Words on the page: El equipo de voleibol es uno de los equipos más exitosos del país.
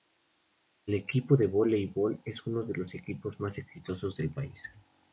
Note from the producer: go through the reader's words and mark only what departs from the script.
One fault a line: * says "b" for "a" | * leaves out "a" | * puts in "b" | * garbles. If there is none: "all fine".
all fine